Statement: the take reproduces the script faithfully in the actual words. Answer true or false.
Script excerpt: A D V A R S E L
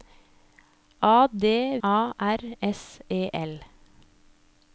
false